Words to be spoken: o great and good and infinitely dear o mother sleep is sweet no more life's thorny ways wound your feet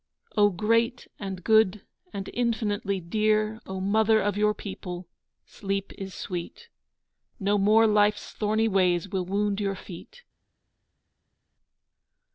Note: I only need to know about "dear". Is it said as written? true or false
true